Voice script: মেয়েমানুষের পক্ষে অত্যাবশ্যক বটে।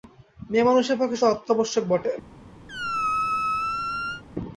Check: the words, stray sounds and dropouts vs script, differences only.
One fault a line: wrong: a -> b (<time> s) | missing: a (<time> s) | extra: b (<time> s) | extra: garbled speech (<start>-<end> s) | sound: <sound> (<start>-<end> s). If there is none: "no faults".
sound: squeak (2.7-4.2 s)